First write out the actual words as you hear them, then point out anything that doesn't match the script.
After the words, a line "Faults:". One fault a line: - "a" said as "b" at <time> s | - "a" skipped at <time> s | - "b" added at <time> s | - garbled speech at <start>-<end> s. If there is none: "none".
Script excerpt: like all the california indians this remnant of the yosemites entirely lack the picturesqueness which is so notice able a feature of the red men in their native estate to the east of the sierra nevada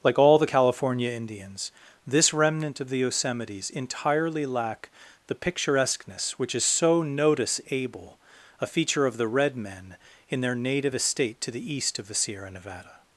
like all the california indians this remnant of the yosemites entirely lack the picturesqueness which is so notice able a feature of the red men in their native estate to the east of the sierra nevada
Faults:
none